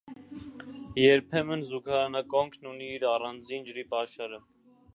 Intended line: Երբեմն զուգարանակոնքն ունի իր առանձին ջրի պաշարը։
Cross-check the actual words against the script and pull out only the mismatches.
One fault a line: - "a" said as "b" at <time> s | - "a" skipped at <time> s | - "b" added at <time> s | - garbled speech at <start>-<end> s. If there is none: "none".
none